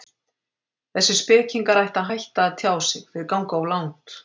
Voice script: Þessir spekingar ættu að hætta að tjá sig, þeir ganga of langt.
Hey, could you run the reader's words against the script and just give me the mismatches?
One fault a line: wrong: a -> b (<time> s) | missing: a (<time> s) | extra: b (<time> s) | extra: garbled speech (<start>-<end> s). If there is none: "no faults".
no faults